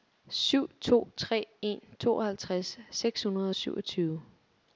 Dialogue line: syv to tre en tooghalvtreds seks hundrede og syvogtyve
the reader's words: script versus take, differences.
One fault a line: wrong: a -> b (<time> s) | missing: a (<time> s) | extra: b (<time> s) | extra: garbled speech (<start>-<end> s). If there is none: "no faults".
no faults